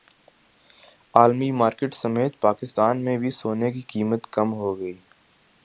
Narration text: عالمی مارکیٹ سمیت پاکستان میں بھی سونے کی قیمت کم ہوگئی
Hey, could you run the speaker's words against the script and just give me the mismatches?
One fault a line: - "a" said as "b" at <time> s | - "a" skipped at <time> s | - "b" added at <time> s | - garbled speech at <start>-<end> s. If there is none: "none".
none